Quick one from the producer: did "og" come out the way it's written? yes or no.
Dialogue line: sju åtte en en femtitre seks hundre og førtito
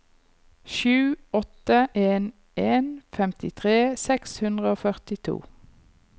yes